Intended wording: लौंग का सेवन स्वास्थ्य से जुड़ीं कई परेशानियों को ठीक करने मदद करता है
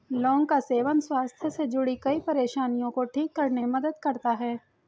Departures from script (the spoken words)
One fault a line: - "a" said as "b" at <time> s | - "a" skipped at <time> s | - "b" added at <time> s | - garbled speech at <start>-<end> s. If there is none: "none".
none